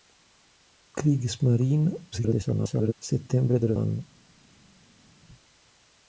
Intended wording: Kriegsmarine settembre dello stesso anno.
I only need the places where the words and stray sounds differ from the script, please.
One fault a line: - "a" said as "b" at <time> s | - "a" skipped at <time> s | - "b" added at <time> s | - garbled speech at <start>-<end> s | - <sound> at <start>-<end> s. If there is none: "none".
- garbled speech at 2.1-2.9 s
- "stesso" skipped at 3.8 s